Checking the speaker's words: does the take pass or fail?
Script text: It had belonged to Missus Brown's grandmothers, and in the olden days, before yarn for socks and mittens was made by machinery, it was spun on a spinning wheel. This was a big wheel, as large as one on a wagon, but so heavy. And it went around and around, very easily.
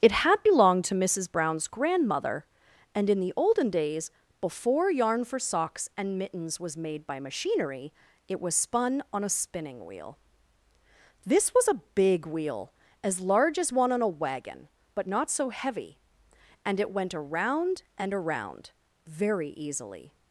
fail